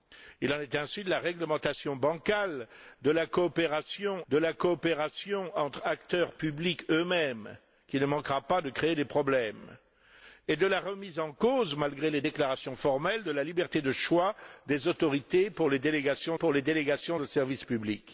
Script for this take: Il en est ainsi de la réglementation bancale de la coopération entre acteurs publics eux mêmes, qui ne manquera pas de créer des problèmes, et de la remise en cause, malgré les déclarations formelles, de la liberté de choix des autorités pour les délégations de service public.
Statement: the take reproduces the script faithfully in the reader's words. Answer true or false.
false